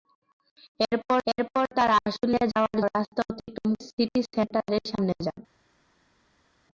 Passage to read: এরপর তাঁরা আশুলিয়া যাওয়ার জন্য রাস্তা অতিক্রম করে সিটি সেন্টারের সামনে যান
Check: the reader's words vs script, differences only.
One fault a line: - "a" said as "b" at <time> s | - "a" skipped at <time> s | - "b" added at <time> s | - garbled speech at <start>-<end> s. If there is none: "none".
- "এরপর" added at 1.3 s
- "জন্য" skipped at 2.8 s
- "করে" skipped at 3.7 s